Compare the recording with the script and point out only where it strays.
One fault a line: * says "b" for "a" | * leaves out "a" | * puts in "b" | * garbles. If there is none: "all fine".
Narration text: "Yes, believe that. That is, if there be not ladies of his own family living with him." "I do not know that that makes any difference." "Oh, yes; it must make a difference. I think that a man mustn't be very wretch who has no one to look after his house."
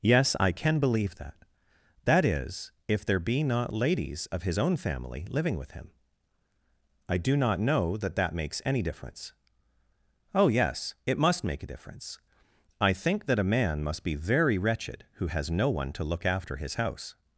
* puts in "I can"
* says "must" for "mustn't"
* says "wretched" for "wretch"